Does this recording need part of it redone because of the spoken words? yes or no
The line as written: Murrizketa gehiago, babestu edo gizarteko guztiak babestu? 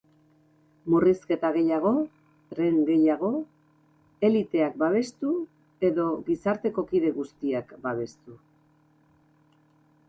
yes